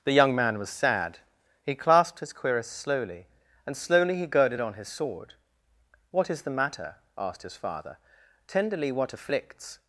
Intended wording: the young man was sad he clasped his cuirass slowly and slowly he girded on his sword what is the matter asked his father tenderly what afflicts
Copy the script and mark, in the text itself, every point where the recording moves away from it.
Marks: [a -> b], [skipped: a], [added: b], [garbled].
the young man was sad he clasped his cuirass slowly and slowly he girded on his sword what is the matter asked his father tenderly what afflicts